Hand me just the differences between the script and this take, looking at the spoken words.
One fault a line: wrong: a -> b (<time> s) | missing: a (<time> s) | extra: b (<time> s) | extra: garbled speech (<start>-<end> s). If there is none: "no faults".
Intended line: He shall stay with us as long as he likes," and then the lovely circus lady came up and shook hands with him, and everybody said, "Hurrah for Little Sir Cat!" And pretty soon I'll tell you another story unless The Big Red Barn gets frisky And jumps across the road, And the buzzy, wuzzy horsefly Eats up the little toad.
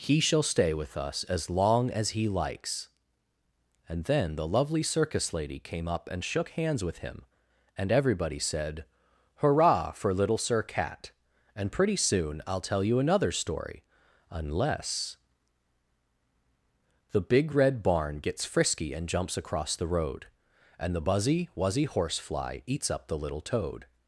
no faults